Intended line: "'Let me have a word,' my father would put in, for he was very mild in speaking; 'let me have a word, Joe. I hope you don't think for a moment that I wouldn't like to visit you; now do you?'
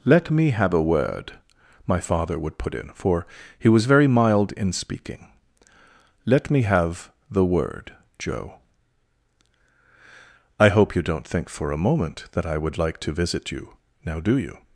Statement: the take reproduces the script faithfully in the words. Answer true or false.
false